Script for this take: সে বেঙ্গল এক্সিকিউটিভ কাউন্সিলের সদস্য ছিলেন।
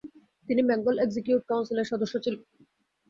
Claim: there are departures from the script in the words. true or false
true